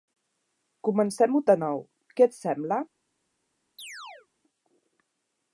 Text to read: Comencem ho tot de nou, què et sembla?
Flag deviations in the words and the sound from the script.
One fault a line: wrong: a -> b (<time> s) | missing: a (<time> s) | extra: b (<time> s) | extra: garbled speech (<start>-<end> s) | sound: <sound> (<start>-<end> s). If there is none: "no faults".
missing: tot (1.4 s)
sound: chirp (3.8-4.3 s)